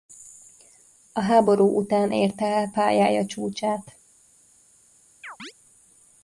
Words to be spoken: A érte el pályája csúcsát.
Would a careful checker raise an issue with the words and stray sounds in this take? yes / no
yes